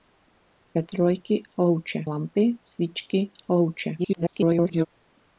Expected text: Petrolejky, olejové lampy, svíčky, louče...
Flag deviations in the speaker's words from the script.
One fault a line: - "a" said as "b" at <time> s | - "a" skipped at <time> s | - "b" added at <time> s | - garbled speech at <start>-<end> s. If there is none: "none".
- "olejové" said as "louče" at 1.6 s
- garbled speech at 4.0-4.9 s